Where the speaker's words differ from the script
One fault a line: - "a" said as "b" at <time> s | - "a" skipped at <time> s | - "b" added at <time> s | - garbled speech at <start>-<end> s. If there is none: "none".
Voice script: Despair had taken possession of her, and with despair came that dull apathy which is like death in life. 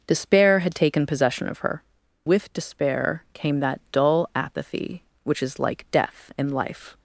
- "and" skipped at 1.8 s